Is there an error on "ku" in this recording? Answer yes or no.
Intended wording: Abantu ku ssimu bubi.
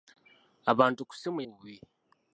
no